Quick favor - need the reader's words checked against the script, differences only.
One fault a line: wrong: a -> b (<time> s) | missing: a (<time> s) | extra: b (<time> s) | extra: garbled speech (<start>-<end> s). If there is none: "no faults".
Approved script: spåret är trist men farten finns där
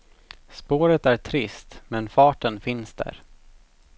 no faults